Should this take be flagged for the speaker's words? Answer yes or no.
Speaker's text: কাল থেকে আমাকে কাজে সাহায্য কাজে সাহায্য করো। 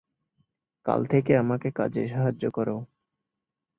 yes